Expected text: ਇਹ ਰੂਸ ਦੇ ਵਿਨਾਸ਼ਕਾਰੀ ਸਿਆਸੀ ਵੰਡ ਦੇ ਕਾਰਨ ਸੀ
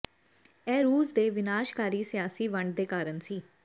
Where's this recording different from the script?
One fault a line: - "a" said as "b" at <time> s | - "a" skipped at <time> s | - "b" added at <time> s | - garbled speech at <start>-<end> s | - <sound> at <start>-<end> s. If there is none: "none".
none